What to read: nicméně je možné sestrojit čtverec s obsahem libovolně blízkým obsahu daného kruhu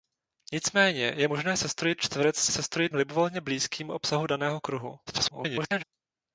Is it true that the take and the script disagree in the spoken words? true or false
true